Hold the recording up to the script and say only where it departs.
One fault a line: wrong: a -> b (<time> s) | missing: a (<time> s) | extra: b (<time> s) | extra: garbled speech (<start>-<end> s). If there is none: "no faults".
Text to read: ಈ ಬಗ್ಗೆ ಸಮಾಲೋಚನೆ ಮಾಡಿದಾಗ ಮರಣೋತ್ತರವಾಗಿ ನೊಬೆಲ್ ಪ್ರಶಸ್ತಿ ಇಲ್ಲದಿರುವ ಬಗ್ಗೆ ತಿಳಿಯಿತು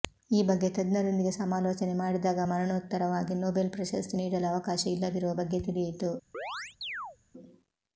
extra: ತಜ್ಞರೊಂದಿಗೆ (0.7 s)
extra: ನೀಡಲು ಅವಕಾಶ (4.2 s)